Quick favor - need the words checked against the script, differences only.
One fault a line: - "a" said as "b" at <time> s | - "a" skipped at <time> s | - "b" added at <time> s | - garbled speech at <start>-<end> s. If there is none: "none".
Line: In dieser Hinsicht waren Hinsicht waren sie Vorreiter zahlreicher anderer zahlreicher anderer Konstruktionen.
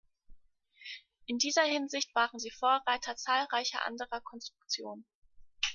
- "Hinsicht waren" skipped at 2.4 s
- "zahlreicher anderer" skipped at 4.2 s